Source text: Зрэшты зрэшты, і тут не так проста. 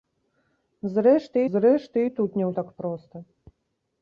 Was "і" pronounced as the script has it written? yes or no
yes